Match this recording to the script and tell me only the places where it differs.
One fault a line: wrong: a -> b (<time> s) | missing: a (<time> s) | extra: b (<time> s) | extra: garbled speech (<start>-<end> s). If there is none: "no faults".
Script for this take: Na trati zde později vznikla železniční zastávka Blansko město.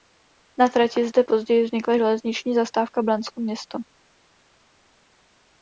no faults